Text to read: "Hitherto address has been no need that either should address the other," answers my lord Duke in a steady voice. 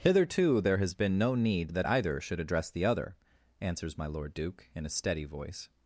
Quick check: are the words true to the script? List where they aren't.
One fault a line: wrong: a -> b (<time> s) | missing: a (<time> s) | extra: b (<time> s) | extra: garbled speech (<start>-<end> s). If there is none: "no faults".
wrong: address -> there (0.6 s)